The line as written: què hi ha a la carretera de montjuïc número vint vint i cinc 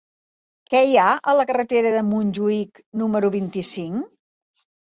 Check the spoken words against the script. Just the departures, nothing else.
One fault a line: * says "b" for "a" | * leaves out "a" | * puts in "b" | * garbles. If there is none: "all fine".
* leaves out "vint"